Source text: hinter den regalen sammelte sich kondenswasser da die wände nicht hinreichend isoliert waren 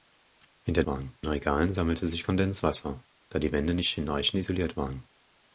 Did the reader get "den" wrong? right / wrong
wrong